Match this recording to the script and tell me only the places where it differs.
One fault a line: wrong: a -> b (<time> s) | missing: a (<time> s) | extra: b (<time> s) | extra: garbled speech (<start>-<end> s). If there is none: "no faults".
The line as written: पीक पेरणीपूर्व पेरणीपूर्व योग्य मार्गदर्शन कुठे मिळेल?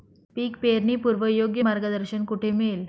missing: पेरणीपूर्व (1.2 s)